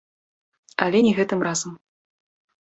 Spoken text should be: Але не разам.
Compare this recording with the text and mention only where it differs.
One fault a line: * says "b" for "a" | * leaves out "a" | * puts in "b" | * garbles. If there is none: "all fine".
* puts in "гэтым"